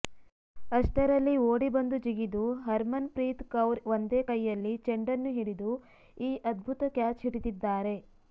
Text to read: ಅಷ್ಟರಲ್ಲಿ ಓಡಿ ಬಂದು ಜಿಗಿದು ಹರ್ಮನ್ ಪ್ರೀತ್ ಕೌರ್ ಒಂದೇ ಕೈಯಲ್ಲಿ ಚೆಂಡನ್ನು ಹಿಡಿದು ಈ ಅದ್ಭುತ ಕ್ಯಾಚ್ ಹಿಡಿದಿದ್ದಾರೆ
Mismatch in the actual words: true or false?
false